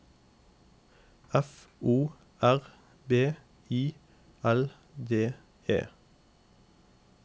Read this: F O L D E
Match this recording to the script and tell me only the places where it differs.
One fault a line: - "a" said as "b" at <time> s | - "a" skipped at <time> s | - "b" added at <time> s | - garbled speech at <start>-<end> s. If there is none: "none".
- "R B I" added at 2.4 s